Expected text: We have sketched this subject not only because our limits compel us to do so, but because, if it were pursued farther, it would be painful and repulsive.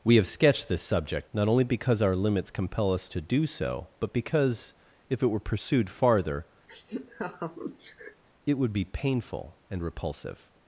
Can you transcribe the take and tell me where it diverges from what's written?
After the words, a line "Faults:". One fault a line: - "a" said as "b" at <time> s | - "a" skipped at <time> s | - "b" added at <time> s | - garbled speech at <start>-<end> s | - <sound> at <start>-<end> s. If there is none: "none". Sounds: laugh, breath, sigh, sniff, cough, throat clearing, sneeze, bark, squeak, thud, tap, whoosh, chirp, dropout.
We have sketched this subject not only because our limits compel us to do so, but because, if it were pursued farther, it would be painful and repulsive.
Faults:
- laugh at 6.7-8.2 s